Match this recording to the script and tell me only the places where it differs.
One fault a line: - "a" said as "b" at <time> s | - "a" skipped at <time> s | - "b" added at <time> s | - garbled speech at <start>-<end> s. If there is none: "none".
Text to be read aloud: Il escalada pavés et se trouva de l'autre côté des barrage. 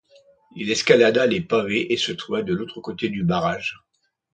- "les" added at 1.3 s
- "des" said as "du" at 3.1 s